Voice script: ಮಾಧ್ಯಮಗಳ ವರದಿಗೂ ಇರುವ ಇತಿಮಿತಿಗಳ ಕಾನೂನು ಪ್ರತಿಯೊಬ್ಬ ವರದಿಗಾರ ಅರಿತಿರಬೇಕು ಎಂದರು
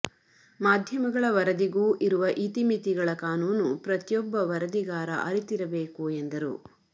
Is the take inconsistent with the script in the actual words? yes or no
no